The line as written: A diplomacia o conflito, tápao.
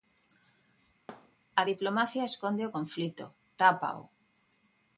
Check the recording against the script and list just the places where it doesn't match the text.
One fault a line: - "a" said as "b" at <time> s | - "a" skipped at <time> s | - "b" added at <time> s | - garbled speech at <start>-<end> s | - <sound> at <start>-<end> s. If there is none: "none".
- thud at 1.1-1.4 s
- "esconde" added at 2.3 s